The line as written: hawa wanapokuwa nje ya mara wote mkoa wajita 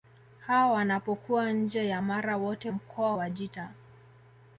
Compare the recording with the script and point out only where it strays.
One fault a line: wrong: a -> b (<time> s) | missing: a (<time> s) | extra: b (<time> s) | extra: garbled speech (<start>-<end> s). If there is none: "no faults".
no faults